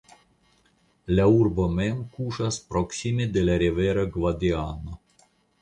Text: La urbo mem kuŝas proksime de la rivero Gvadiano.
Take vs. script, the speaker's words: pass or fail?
pass